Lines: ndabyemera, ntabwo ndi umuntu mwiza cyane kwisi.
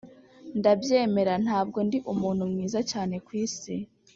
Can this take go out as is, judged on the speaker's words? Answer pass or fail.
pass